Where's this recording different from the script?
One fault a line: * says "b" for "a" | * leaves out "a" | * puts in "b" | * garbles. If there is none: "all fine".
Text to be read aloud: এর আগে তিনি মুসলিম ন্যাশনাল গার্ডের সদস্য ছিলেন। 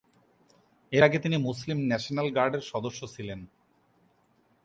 all fine